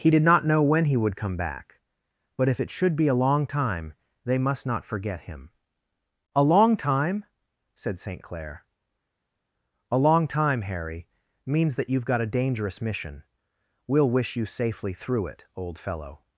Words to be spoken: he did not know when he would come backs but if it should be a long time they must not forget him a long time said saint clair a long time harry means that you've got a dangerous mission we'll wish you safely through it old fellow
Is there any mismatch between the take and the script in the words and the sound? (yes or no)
yes